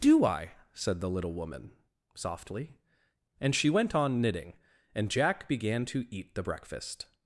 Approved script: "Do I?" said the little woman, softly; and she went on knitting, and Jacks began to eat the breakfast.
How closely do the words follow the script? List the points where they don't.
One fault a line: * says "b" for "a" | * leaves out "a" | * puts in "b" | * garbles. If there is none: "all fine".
* says "Jack" for "Jacks"